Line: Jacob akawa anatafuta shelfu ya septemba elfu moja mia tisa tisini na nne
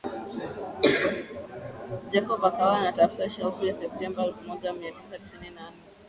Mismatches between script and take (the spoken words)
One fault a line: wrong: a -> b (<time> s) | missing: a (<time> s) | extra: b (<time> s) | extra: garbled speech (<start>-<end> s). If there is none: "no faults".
no faults